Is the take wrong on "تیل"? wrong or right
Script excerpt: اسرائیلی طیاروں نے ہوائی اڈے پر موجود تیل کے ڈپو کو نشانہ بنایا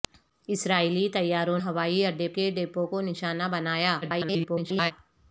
wrong